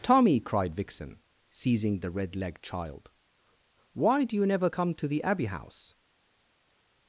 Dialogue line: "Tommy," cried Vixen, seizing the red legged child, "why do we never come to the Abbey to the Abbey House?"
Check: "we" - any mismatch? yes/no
yes